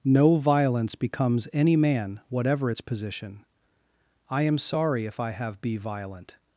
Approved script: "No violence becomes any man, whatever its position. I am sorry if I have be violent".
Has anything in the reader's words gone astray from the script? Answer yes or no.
no